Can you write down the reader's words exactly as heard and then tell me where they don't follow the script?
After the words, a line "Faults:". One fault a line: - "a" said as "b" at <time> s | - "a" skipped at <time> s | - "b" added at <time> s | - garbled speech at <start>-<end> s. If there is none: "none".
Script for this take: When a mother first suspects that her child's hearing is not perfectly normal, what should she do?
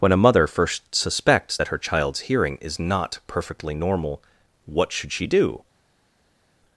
When a mother first suspects that her child's hearing is not perfectly normal, what should she do?
Faults:
none